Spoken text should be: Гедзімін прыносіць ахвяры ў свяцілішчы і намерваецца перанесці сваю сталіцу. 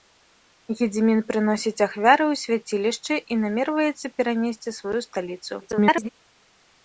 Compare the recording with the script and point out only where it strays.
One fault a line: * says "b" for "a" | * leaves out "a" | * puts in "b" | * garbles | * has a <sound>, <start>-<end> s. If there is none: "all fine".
* garbles